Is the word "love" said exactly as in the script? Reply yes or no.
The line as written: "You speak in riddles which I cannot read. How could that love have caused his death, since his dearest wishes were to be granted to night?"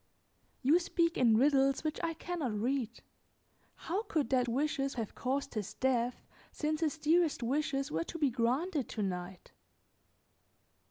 no